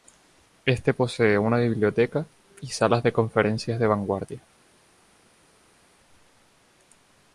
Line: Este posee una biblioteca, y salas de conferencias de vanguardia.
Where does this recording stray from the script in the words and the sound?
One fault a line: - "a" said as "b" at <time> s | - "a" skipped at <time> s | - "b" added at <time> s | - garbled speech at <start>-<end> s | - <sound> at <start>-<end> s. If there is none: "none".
none